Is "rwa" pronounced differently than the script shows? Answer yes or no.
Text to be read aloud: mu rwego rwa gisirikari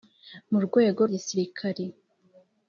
yes